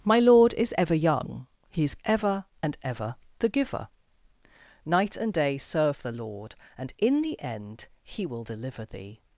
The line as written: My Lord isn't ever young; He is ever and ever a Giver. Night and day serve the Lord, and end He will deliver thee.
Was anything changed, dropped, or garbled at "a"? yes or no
yes